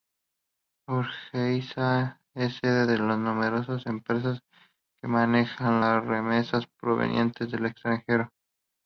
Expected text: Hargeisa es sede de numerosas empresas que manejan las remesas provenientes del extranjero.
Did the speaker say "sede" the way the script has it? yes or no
yes